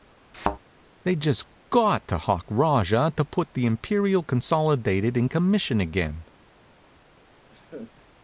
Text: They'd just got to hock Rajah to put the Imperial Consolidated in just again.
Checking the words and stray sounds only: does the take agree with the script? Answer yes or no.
no